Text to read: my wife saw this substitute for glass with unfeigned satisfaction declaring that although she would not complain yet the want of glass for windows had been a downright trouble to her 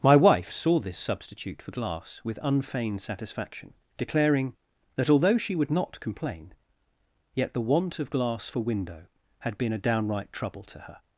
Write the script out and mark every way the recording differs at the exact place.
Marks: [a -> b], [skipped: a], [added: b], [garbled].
my wife saw this substitute for glass with unfeigned satisfaction declaring that although she would not complain yet the want of glass for [windows -> window] had been a downright trouble to her